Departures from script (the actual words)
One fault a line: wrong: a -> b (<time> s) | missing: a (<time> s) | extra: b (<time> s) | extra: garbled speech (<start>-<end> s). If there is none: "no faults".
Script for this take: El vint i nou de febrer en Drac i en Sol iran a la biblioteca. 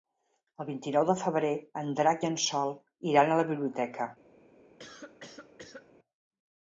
no faults